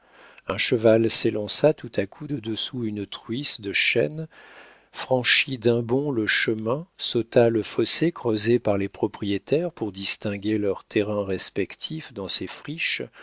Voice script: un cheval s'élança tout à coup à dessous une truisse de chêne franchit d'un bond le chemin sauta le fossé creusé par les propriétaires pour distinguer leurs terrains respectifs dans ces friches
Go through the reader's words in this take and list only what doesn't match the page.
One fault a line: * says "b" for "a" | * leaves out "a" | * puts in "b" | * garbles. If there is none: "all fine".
* says "de" for "à"